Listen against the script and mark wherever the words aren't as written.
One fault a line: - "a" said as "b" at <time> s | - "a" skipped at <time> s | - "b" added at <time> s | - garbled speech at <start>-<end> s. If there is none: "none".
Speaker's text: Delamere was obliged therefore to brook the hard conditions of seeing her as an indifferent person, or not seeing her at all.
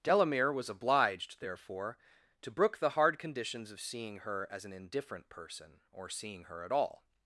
- "not" skipped at 6.1 s